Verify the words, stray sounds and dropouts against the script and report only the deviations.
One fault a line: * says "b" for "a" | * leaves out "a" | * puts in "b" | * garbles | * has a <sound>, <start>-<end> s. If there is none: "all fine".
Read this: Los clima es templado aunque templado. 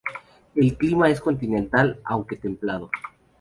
* says "El" for "Los"
* says "continental" for "templado"